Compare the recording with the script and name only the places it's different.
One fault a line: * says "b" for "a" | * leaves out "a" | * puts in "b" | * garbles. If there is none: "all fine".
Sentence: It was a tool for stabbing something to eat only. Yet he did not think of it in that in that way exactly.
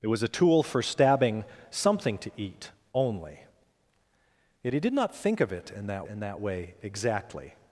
all fine